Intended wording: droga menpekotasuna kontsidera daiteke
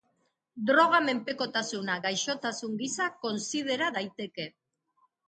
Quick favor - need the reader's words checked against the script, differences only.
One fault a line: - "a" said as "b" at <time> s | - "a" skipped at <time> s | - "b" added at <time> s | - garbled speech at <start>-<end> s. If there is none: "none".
- "gaixotasun gisa" added at 2.0 s